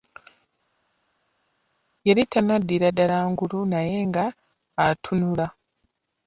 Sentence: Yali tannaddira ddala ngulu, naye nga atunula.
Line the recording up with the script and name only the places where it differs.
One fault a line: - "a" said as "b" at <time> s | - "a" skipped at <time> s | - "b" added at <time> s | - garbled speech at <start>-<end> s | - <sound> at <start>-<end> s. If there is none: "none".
none